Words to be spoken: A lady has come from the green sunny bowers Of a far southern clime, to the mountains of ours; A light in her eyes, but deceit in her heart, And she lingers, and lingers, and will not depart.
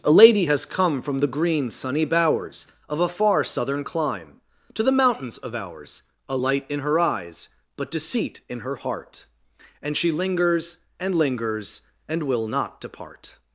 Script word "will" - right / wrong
right